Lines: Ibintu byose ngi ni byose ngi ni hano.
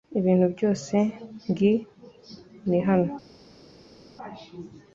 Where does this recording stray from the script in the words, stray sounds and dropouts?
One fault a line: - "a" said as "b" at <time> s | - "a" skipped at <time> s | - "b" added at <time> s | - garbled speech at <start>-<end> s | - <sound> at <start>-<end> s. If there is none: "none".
- "byose ngi ni" skipped at 2.8 s